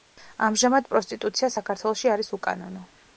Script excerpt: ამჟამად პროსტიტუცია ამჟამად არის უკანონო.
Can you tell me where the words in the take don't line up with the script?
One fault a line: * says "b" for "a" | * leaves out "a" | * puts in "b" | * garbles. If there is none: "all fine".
* says "საქართველოში" for "ამჟამად"